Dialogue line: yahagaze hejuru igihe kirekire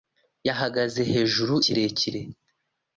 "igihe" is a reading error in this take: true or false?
true